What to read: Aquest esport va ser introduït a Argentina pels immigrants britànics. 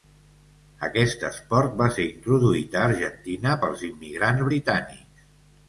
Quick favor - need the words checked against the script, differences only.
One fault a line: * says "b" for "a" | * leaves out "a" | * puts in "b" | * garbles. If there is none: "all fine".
all fine